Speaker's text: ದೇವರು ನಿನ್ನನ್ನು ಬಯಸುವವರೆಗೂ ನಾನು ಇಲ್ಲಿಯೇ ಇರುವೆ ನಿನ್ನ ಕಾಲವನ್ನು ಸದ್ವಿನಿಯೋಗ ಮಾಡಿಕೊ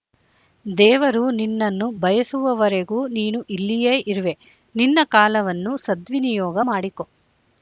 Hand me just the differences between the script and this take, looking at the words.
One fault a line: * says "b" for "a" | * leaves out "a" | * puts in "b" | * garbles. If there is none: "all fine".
* says "ನೀನು" for "ನಾನು"